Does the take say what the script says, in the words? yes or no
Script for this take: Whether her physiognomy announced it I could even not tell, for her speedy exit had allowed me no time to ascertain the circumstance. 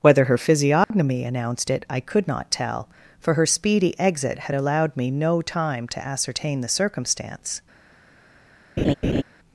no